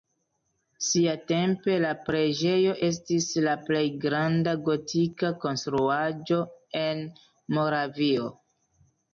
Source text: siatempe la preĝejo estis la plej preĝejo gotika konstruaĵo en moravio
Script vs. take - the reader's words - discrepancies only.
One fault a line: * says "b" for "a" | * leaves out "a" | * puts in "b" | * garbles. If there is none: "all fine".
* says "granda" for "preĝejo"